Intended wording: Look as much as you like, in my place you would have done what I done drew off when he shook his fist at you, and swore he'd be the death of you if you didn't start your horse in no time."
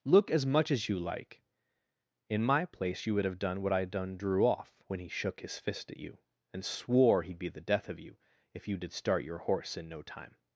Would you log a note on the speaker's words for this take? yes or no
yes